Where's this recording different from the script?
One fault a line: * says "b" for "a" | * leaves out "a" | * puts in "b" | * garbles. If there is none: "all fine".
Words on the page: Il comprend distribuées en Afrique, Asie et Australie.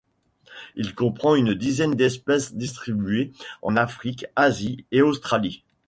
* puts in "une dizaine d'espèces"